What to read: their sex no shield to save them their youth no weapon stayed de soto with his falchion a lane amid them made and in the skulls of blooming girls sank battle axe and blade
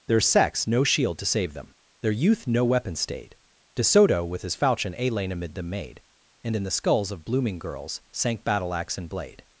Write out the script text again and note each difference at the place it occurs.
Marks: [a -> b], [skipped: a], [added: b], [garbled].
their sex no shield to save them their youth no weapon stayed de soto with his falchion a lane amid them made and in the skulls of blooming girls sank battle axe and blade